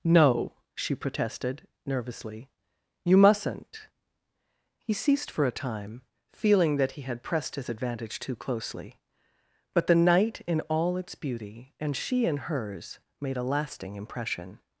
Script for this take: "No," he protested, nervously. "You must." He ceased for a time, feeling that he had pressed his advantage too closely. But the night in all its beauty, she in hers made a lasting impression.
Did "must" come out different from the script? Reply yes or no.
yes